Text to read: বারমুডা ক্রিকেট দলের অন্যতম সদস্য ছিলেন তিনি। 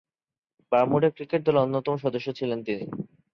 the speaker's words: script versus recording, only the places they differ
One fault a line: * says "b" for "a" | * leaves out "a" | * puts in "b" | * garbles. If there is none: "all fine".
all fine